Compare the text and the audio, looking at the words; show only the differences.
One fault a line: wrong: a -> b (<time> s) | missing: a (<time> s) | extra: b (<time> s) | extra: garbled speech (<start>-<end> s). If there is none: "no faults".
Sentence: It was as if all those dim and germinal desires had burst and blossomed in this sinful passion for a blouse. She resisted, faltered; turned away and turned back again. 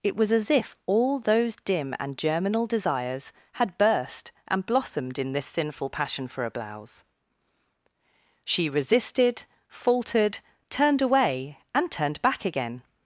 no faults